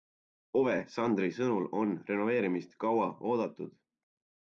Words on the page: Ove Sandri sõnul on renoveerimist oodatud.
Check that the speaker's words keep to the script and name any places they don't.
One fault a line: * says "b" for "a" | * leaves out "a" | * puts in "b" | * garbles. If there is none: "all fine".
* puts in "kaua"